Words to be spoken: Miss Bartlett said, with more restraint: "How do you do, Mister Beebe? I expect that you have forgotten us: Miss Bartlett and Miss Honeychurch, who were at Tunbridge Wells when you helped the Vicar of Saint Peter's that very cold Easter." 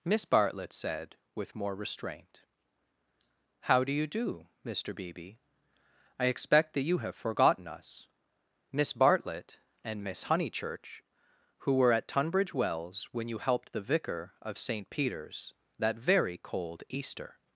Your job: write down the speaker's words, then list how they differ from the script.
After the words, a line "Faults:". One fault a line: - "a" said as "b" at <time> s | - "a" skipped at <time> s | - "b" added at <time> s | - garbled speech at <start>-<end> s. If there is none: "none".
Miss Bartlett said, with more restraint: "How do you do, Mister Beebe? I expect that you have forgotten us: Miss Bartlett and Miss Honeychurch, who were at Tunbridge Wells when you helped the Vicar of Saint Peter's that very cold Easter."
Faults:
none